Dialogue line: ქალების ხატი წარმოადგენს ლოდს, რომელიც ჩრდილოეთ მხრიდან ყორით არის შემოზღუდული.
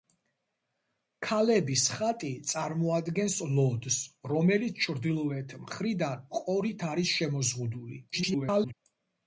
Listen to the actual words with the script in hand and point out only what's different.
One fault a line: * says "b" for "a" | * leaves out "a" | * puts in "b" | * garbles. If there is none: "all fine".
* garbles